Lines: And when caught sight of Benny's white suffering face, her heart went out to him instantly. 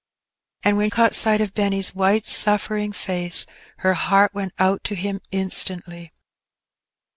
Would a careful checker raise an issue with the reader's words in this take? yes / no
no